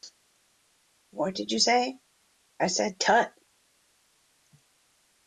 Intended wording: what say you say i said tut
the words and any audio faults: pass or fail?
fail